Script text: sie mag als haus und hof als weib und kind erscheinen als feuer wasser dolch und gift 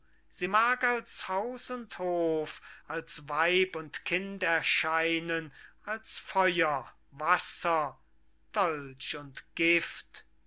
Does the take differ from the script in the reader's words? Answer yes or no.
no